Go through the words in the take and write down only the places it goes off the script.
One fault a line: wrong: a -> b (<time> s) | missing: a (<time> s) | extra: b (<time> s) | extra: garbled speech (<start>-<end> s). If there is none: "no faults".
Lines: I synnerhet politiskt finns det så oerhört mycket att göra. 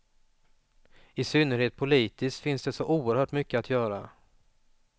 no faults